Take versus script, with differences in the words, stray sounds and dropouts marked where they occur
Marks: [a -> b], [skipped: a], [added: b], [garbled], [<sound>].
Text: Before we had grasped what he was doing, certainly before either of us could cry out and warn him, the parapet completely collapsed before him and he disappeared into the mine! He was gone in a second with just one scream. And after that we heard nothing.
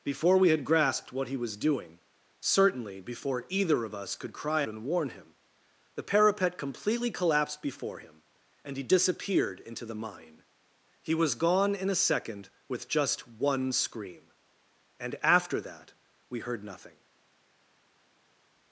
Before we had grasped what he was doing, certainly before either of us could cry [skipped: out] and warn him, the parapet completely collapsed before him and he disappeared into the mine! He was gone in a second with just one scream. And after that we heard nothing.